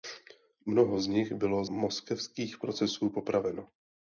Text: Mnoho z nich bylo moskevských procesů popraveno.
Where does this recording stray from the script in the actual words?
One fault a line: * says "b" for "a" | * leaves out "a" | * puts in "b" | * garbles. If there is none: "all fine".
all fine